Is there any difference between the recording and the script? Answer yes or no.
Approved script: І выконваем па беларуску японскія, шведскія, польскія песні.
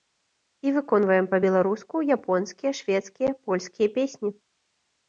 no